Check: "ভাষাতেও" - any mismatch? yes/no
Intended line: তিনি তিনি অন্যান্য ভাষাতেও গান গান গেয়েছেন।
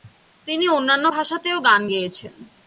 no